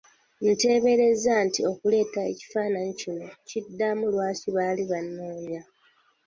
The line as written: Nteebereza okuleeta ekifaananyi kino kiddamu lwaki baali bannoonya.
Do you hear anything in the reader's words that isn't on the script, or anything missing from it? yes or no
yes